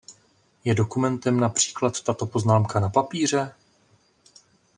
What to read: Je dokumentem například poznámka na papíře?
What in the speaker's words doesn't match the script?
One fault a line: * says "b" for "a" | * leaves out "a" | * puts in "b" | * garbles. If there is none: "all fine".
* puts in "tato"